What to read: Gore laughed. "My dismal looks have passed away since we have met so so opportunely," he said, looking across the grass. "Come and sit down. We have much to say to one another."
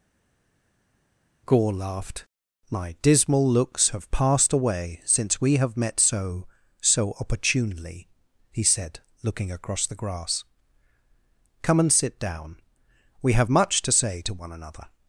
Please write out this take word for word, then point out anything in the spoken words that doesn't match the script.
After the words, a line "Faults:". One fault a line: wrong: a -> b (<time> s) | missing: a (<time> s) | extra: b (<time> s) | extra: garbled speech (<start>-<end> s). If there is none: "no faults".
Gore laughed. "My dismal looks have passed away since we have met so so opportunely," he said, looking across the grass. "Come and sit down. We have much to say to one another."
Faults:
no faults